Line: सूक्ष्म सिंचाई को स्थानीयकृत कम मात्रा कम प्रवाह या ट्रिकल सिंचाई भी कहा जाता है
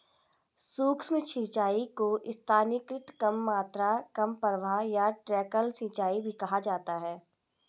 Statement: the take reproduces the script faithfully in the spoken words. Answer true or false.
true